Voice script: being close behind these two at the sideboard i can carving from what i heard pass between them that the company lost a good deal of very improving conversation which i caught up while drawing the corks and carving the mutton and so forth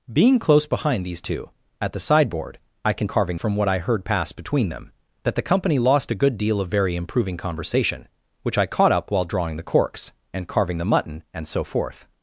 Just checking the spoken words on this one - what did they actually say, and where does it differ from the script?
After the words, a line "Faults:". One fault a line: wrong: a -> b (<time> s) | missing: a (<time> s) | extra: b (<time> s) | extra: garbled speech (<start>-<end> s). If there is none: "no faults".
being close behind these two at the sideboard i can carving from what i heard pass between them that the company lost a good deal of very improving conversation which i caught up while drawing the corks and carving the mutton and so forth
Faults:
no faults